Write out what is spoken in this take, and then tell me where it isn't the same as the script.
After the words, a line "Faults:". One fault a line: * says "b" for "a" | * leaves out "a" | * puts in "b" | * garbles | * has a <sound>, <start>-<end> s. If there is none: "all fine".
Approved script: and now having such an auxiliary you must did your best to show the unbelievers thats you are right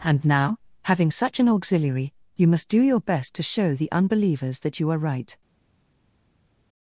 and now having such an auxiliary you must do your best to show the unbelievers that you are right
Faults:
* says "do" for "did"
* says "that" for "thats"